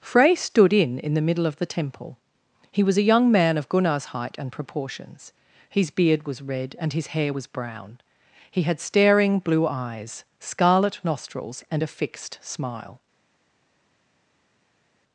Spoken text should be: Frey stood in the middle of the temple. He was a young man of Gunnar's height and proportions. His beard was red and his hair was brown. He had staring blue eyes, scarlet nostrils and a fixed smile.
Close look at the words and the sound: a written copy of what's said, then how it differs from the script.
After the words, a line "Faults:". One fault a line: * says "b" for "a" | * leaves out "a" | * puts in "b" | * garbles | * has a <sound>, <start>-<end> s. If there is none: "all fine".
Frey stood in in the middle of the temple. He was a young man of Gunnar's height and proportions. His beard was red and his hair was brown. He had staring blue eyes, scarlet nostrils and a fixed smile.
Faults:
* puts in "in"